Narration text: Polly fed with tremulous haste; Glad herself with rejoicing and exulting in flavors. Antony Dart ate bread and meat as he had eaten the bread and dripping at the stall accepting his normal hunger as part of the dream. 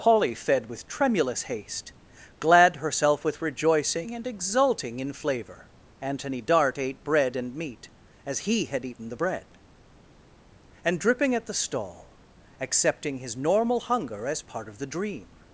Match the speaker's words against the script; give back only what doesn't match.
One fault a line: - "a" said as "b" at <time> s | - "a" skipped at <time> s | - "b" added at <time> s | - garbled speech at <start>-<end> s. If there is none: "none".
- "flavors" said as "flavor" at 5.1 s